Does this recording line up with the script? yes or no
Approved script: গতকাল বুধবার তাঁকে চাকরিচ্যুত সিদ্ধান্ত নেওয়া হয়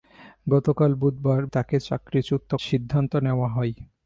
yes